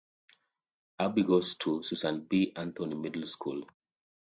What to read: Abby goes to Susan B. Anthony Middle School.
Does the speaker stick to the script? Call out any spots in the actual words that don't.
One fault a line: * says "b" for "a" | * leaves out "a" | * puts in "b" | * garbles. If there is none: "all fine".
all fine